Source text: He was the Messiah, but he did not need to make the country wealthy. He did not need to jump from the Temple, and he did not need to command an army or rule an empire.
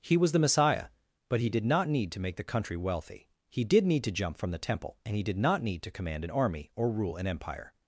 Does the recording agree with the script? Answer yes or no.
no